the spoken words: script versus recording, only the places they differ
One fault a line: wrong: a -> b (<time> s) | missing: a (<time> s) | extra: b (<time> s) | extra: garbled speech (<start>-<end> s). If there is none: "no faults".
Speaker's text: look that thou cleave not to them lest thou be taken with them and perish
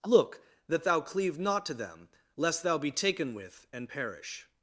missing: them (3.7 s)